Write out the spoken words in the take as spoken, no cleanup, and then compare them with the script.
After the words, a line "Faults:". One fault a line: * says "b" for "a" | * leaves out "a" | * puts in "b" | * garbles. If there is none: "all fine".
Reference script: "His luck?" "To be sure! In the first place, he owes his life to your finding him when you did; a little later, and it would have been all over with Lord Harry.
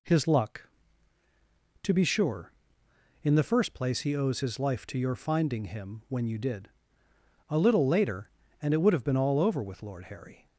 "His luck?" "To be sure! In the first place, he owes his life to your finding him when you did; a little later, and it would have been all over with Lord Harry.
Faults:
all fine